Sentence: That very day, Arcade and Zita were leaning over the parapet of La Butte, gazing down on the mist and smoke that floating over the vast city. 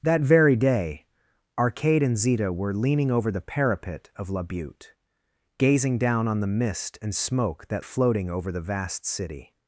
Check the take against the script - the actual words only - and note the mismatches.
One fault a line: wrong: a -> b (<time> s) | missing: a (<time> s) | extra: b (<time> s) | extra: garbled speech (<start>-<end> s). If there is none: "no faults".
no faults